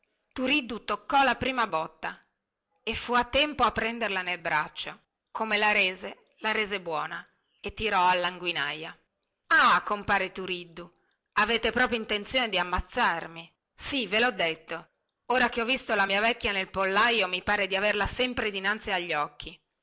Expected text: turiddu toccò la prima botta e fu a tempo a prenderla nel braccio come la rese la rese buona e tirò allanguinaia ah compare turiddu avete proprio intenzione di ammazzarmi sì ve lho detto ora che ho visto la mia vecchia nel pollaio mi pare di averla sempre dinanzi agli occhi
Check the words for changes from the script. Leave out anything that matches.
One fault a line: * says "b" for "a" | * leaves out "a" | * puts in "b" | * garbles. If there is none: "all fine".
all fine